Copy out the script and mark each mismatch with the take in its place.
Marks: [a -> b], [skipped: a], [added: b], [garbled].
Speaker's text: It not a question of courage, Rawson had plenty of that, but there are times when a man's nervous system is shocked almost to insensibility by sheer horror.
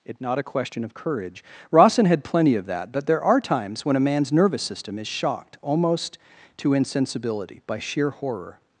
It not a question of courage, Rawson had plenty of that, but there are times when a man's nervous system is shocked almost to insensibility by sheer horror.